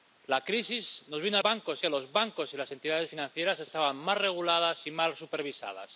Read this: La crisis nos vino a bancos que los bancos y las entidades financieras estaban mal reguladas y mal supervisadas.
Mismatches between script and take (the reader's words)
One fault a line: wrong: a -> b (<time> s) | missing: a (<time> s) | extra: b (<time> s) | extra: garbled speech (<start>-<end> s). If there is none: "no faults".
no faults